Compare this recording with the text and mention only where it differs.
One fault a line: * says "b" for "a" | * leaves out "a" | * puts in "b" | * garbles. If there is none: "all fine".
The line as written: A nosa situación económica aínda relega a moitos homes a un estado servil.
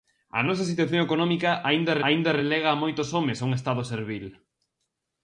* puts in "aínda"